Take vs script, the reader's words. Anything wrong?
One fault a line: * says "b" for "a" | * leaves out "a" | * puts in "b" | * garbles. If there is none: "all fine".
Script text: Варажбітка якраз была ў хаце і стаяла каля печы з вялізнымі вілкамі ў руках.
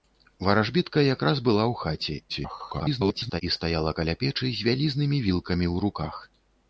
* garbles